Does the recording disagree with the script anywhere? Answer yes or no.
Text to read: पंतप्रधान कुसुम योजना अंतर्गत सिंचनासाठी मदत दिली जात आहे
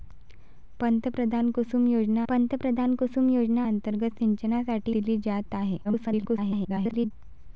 yes